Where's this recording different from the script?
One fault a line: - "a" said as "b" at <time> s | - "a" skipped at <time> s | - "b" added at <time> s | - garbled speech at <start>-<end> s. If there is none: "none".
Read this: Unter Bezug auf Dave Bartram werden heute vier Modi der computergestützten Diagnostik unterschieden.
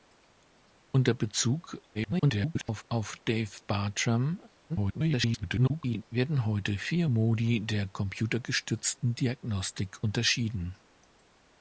- garbled speech at 1.9-2.8 s
- garbled speech at 4.7-6.0 s